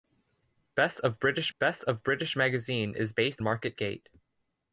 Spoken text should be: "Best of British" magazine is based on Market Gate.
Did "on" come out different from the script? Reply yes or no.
yes